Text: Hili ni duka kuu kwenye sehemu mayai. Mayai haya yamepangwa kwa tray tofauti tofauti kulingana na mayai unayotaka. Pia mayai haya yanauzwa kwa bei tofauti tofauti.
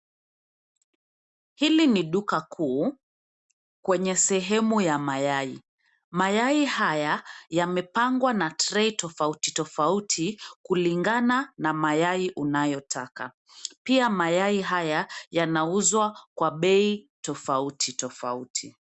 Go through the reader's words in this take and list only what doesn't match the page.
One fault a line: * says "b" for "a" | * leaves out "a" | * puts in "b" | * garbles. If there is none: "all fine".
* puts in "ya"
* says "na" for "kwa"